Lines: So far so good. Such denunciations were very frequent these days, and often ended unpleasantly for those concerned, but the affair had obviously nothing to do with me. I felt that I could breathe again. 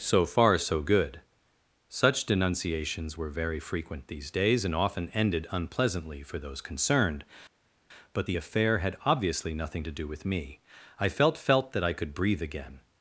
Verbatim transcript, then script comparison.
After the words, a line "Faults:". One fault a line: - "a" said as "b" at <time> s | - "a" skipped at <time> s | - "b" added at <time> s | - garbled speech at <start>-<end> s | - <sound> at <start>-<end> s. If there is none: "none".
So far so good. Such denunciations were very frequent these days, and often ended unpleasantly for those concerned, but the affair had obviously nothing to do with me. I felt felt that I could breathe again.
Faults:
- "felt" added at 11.4 s